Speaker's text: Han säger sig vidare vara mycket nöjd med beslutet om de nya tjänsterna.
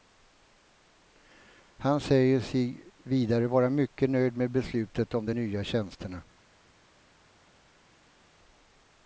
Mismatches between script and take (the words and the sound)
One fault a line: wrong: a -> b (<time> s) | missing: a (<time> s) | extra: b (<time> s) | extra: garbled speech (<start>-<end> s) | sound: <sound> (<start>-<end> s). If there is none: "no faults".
no faults